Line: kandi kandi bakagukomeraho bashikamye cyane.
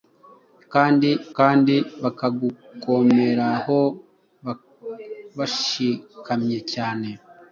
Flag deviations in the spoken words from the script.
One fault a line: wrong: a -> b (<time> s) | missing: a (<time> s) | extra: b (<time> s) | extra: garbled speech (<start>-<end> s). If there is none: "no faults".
no faults